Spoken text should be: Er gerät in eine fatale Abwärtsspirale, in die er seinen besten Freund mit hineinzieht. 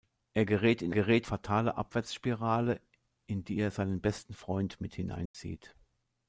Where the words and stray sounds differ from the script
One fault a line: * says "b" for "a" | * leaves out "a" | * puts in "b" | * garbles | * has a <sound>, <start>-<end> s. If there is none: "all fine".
* says "gerät" for "eine"
* has a dropout, 5.3-5.3 s